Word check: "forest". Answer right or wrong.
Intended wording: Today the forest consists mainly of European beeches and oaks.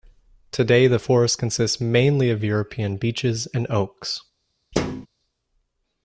right